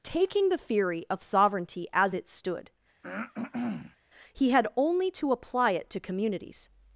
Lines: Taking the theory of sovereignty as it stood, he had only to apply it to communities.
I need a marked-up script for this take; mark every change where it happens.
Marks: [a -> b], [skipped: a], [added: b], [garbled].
Taking the theory of sovereignty as it stood, he had only to apply it to communities.